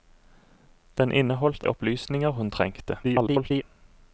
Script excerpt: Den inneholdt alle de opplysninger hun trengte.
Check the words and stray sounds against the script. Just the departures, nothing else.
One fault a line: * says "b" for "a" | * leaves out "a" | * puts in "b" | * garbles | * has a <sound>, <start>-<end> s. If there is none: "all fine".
* leaves out "alle de"
* garbles